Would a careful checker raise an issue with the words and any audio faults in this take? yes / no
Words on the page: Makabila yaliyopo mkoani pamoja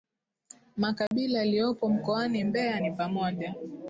yes